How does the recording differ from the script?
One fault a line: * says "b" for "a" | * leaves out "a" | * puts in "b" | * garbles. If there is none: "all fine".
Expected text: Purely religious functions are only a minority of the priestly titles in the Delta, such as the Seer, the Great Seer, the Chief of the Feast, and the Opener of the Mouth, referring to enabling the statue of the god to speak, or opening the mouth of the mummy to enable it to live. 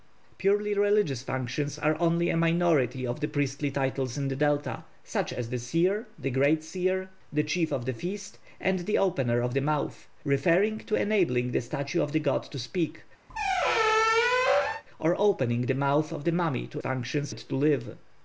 * says "functions" for "enable"